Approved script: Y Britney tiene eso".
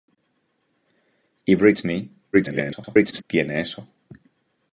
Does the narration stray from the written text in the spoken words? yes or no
yes